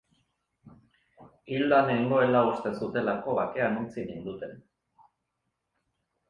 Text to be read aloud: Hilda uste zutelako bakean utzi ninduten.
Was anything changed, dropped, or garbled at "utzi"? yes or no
no